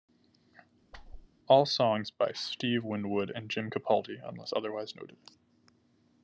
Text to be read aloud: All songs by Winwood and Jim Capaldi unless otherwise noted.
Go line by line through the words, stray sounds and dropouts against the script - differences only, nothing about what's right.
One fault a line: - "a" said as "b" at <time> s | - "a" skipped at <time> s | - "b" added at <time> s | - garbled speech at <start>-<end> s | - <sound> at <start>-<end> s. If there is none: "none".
- whoosh at 0.9-1.3 s
- "Steve" added at 2.3 s